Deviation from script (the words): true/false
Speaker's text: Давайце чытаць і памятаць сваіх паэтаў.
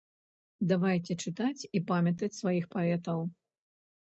false